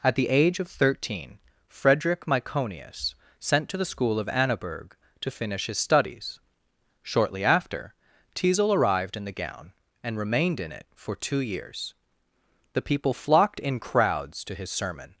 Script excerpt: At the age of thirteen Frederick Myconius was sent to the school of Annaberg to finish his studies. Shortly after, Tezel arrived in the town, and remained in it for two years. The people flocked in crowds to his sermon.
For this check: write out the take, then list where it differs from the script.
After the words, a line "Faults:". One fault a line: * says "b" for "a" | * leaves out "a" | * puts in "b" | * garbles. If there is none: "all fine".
At the age of thirteen Frederick Myconius sent to the school of Annaberg to finish his studies. Shortly after, Tezel arrived in the gown, and remained in it for two years. The people flocked in crowds to his sermon.
Faults:
* leaves out "was"
* says "gown" for "town"